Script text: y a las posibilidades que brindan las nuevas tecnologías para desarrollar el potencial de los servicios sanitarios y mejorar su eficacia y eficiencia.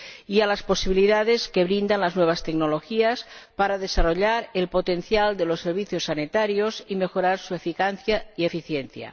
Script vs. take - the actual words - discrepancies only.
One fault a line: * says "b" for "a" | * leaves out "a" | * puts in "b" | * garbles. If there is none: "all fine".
all fine